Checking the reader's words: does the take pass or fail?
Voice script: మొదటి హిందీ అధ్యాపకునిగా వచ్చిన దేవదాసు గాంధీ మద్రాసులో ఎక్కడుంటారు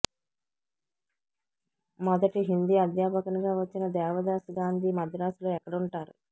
pass